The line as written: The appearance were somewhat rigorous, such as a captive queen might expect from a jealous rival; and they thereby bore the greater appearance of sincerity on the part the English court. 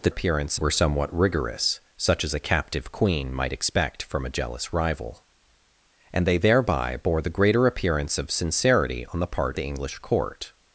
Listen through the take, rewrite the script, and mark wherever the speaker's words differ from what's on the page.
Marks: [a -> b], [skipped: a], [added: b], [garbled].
The appearance were somewhat rigorous, such as a captive queen might expect from a jealous rival; and they thereby bore the greater appearance of sincerity on the part the English court.